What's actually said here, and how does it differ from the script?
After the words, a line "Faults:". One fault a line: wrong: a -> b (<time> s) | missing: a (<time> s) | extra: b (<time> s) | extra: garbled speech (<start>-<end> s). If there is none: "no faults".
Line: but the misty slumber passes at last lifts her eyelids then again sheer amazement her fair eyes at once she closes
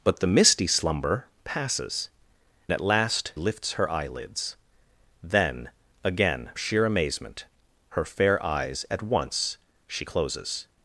but the misty slumber passes at last lifts her eyelids then again sheer amazement her fair eyes at once she closes
Faults:
no faults